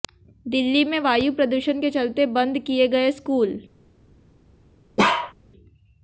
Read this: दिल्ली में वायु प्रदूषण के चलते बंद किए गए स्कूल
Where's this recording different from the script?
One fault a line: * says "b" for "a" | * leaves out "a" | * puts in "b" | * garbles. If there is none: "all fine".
all fine